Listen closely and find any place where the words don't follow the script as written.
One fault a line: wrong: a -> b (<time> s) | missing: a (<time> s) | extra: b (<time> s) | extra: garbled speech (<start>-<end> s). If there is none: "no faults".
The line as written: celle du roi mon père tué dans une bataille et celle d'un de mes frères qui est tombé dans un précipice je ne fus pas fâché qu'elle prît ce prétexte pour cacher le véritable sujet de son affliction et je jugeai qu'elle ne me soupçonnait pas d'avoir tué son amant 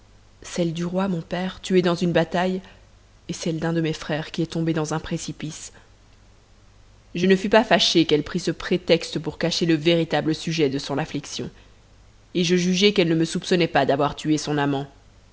no faults